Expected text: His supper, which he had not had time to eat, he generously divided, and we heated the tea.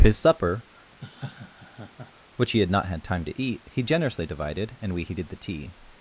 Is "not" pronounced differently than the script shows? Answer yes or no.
no